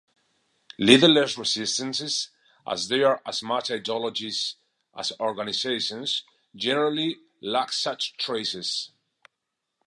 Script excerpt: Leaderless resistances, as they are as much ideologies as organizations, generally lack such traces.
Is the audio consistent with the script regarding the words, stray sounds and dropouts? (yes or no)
yes